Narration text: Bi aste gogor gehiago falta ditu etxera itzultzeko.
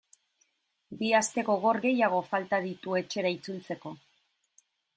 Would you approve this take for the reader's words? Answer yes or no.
yes